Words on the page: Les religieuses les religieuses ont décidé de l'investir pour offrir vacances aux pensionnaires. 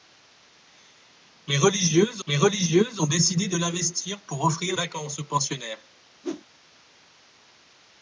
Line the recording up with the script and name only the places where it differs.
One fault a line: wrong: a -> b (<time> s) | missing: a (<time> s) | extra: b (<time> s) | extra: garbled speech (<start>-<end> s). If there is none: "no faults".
no faults